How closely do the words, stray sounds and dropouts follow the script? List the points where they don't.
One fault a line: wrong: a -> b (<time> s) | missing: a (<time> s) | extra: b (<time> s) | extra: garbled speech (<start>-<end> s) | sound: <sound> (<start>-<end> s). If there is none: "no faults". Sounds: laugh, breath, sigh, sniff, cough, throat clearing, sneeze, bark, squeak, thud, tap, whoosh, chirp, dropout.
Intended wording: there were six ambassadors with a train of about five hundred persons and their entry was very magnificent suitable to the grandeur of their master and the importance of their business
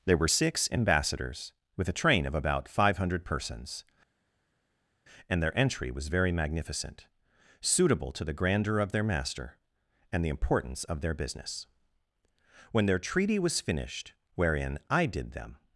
extra: when their treaty was finished wherein i did them (12.7 s)